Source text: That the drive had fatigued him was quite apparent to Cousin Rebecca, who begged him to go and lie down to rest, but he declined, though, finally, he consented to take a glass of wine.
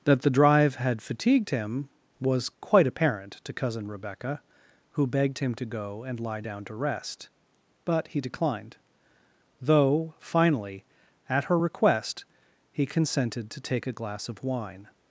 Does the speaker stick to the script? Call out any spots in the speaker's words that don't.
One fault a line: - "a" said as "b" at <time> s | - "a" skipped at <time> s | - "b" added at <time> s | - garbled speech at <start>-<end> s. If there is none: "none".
- "at her request" added at 11.3 s